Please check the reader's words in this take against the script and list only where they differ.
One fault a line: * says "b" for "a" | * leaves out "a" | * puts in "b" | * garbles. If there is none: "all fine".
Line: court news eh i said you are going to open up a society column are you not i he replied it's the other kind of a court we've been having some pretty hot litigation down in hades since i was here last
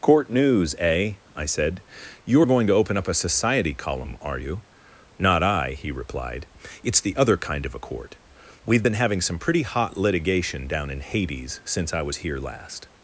all fine